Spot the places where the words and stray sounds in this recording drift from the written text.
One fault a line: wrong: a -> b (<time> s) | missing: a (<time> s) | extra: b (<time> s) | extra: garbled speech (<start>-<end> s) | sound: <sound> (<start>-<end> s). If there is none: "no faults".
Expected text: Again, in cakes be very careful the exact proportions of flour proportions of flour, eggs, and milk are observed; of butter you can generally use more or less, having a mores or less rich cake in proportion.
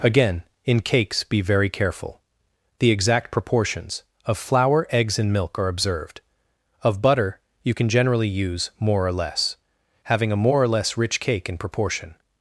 missing: proportions of flour (4.9 s)
wrong: mores -> more (10.4 s)